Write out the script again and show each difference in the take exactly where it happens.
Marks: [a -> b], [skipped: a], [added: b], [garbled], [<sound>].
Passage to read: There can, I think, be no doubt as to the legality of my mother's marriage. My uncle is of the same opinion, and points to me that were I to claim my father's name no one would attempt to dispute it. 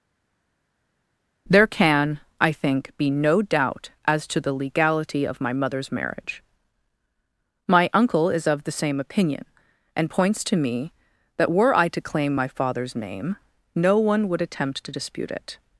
There can, I think, be no doubt as to the legality of my mother's marriage. My uncle is of the same opinion, and points to me that were I to claim my father's name no one would attempt to dispute it.